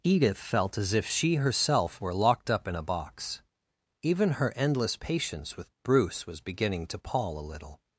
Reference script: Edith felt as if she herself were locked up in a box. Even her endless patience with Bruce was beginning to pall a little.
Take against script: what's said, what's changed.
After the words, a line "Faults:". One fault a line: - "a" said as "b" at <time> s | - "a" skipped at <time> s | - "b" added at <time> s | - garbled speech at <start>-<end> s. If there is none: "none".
Edith felt as if she herself were locked up in a box. Even her endless patience with Bruce was beginning to pall a little.
Faults:
none